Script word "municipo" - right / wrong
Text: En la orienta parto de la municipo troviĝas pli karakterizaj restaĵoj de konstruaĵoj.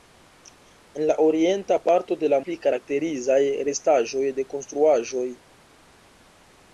wrong